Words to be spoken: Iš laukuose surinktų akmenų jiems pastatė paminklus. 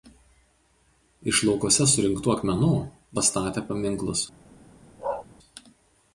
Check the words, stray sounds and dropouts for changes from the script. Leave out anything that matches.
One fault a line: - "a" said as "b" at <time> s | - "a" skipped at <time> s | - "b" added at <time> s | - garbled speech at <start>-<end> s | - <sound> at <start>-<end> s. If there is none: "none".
- "jiems" skipped at 2.7 s
- bark at 5.0-5.3 s